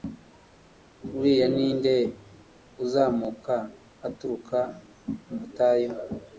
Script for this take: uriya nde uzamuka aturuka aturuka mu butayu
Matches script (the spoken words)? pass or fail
fail